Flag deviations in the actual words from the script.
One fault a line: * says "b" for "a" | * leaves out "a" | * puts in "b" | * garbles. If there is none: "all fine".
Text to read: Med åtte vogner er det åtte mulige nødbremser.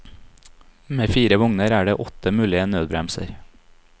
* says "fire" for "åtte"